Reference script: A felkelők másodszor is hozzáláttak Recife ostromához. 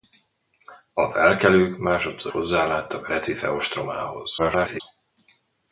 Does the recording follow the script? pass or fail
fail